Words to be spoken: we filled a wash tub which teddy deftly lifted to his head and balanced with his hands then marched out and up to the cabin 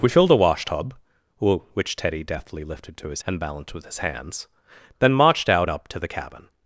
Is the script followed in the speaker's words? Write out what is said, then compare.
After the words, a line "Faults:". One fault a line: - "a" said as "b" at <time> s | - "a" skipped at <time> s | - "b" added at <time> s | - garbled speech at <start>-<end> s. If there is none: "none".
we filled a wash tub which teddy deftly lifted to his and balanced with his hands then marched out up to the cabin
Faults:
- "head" skipped at 3.2 s
- "and" skipped at 5.7 s